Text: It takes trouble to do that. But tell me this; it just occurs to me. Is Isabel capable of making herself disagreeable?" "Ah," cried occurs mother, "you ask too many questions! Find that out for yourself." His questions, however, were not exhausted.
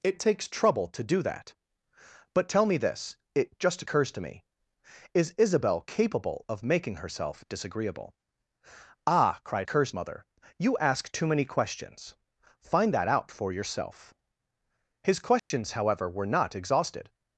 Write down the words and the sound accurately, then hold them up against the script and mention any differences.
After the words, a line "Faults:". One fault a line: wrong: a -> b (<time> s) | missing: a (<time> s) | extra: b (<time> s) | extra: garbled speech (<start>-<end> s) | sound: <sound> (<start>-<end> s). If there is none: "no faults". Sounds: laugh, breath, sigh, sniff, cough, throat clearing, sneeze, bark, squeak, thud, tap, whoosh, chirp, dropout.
It takes trouble to do that. But tell me this; it just occurs to me. Is Isabel capable of making herself disagreeable?" "Ah," cried occurs mother, "you ask too many questions! Find that out for yourself." His questions, however, were not exhausted.
Faults:
sound: dropout (15.4-15.5 s)